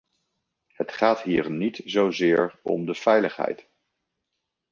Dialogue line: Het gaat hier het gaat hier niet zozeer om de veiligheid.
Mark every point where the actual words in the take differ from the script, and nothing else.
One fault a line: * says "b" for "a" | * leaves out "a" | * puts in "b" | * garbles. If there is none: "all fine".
* leaves out "het gaat hier"